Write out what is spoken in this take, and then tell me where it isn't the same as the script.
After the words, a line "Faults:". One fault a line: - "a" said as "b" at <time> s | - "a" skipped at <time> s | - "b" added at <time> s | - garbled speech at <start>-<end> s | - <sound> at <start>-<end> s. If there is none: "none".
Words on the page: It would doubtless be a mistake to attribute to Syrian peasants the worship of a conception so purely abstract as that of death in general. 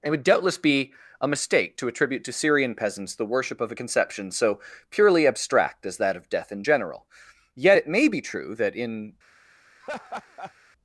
It would doubtless be a mistake to attribute to Syrian peasants the worship of a conception so purely abstract as that of death in general. Yet it may be true that in
Faults:
- "Yet it may be true that in" added at 7.5 s
- laugh at 9.8-10.5 s